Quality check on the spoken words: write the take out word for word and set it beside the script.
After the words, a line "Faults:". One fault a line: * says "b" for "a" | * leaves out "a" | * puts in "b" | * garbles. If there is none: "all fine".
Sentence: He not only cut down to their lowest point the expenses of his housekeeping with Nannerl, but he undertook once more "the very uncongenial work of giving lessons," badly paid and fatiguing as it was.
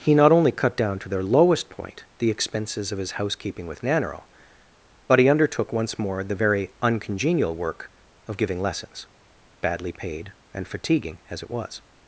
He not only cut down to their lowest point the expenses of his housekeeping with Nannerl, but he undertook once more "the very uncongenial work of giving lessons," badly paid and fatiguing as it was.
Faults:
all fine